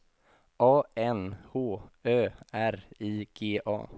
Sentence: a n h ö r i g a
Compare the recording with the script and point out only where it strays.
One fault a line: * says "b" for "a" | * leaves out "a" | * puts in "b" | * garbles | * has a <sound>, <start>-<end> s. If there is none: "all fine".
all fine